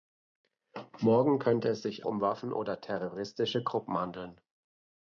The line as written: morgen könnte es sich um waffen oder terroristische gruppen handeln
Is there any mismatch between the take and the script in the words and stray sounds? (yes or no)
no